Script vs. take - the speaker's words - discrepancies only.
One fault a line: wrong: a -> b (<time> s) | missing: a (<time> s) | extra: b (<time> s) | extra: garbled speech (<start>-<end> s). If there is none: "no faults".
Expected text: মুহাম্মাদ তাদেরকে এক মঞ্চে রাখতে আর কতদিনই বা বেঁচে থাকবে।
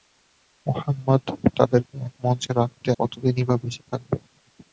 missing: আর (2.9 s)